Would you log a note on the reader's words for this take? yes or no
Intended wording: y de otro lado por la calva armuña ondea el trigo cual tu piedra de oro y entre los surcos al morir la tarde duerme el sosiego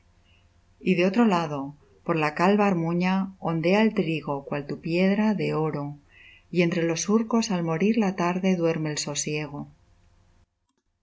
no